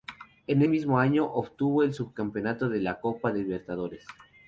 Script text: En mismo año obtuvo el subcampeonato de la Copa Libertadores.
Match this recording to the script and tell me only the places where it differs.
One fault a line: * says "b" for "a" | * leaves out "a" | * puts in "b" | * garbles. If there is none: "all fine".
all fine